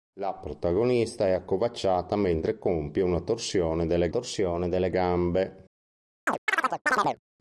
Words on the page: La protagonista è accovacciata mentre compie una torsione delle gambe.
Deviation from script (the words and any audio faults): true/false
true